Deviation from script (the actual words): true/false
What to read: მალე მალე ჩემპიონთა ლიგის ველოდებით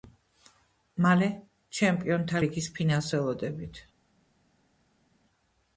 true